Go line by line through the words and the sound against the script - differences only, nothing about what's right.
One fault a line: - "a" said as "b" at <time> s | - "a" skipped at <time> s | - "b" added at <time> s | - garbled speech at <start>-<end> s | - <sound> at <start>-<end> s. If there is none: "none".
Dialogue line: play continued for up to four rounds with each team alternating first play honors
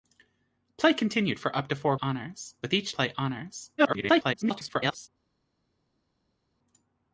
- "rounds" said as "honors" at 2.0 s
- "team alternating first" skipped at 2.9 s
- garbled speech at 3.8-5.1 s